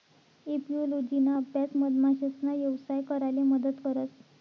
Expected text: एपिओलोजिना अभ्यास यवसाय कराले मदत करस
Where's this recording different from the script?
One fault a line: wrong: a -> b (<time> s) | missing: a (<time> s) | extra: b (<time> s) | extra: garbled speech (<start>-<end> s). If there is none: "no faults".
extra: मधमाशासना (1.7 s)